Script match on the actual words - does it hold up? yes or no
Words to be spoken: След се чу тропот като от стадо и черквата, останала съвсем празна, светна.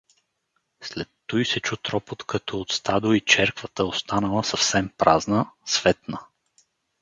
no